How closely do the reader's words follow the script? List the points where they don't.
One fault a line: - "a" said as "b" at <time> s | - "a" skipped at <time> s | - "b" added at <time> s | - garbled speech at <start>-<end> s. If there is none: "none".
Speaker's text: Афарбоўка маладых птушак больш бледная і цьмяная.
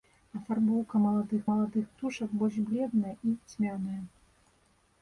- "маладых" added at 1.5 s